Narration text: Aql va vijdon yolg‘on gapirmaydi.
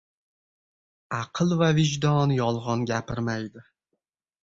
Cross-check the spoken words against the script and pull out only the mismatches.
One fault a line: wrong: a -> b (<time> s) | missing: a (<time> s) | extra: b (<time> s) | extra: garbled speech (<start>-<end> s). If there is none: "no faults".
no faults